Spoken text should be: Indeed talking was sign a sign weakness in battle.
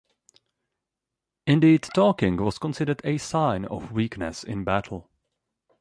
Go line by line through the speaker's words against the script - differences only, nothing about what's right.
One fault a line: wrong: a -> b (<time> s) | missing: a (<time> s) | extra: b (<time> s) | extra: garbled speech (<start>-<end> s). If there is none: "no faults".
wrong: sign -> considered (2.6 s)
extra: of (3.7 s)